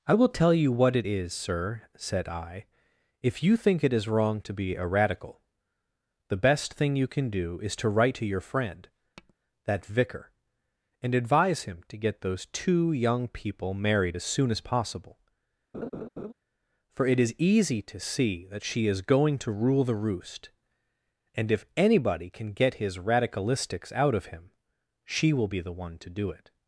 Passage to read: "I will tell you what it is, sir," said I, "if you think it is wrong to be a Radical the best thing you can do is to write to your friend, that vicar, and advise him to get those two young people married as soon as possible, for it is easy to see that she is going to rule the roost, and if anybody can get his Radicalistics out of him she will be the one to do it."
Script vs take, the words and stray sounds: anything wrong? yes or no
yes